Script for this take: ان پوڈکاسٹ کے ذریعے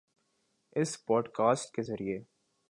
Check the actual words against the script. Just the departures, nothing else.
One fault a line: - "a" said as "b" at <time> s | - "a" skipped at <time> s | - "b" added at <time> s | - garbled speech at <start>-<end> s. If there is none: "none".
- "ان" said as "اس" at 0.8 s